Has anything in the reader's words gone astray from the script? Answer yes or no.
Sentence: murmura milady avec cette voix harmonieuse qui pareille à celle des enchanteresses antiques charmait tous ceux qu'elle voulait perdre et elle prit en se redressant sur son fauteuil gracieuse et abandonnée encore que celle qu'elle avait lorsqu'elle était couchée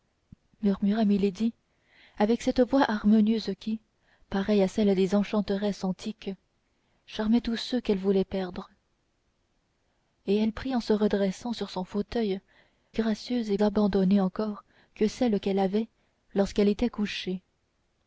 no